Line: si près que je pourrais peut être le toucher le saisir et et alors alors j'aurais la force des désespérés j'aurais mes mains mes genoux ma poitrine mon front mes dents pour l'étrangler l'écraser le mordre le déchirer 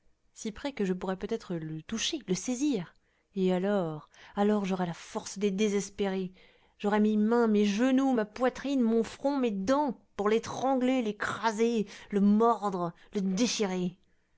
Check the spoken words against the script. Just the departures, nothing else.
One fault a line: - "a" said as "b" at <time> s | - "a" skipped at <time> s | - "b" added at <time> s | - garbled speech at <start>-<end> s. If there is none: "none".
- "et" skipped at 3.5 s